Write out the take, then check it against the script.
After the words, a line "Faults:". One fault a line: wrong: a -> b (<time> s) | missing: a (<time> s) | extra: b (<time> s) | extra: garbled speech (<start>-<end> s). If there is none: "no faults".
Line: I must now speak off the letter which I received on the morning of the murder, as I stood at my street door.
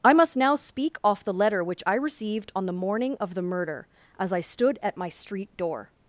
I must now speak off the letter which I received on the morning of the murder, as I stood at my street door.
Faults:
no faults